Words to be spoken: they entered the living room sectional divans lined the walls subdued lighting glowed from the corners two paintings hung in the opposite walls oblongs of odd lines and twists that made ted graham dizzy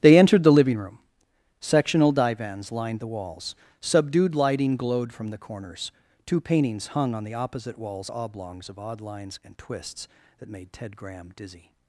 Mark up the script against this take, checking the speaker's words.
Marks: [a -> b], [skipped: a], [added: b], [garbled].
they entered the living room sectional divans lined the walls subdued lighting glowed from the corners two paintings hung [in -> on] the opposite walls oblongs of odd lines and twists that made ted graham dizzy